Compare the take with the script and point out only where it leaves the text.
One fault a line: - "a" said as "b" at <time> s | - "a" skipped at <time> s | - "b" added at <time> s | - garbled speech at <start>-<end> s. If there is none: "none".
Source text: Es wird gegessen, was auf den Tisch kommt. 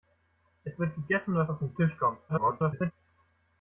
- garbled speech at 2.3-2.9 s